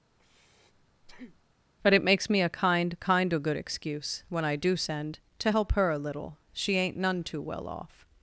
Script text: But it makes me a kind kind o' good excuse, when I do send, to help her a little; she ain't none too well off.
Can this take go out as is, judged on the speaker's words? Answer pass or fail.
pass